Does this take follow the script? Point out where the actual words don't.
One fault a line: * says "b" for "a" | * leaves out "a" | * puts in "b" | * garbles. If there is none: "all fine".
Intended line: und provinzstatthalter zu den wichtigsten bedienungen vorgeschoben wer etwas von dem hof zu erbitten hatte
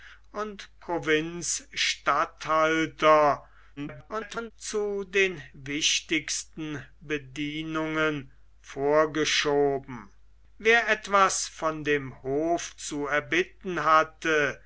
* garbles